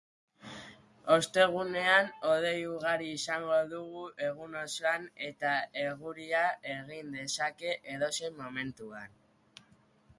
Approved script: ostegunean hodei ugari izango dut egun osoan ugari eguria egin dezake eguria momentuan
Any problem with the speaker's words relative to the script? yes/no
yes